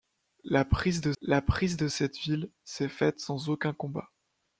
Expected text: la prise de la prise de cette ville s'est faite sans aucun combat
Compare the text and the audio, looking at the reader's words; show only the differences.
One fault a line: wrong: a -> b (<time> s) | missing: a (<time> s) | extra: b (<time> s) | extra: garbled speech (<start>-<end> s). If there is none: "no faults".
no faults